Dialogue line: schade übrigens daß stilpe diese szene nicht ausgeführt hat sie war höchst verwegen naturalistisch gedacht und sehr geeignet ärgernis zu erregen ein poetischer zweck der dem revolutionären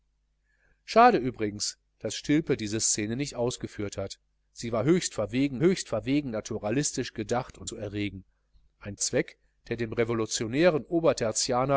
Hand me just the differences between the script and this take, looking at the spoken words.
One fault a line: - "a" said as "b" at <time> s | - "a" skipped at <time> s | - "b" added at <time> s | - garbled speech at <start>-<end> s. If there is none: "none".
- "höchst verwegen" added at 5.6 s
- "sehr geeignet ärgernis" skipped at 7.7 s
- "poetischer" skipped at 9.0 s